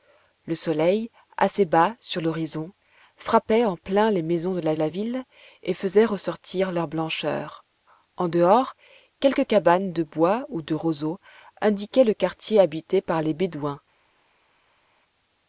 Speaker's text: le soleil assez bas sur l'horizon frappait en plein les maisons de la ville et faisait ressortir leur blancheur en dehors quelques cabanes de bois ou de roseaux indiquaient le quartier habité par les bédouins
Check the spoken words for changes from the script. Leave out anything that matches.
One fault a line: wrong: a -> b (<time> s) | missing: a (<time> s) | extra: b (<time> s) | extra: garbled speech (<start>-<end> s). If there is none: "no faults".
extra: la (4.7 s)